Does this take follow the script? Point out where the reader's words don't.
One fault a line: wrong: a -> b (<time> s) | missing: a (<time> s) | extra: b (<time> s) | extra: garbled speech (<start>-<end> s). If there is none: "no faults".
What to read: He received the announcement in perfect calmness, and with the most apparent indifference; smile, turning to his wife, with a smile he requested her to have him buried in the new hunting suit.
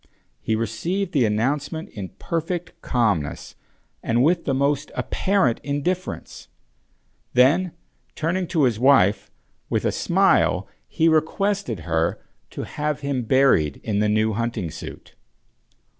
wrong: smile -> then (7.3 s)